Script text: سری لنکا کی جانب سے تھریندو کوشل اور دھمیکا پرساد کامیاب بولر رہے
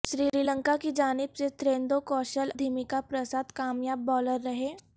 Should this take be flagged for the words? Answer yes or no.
yes